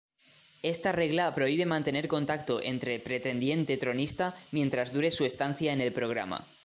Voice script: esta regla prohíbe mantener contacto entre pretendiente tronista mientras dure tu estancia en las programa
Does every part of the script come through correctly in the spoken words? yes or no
no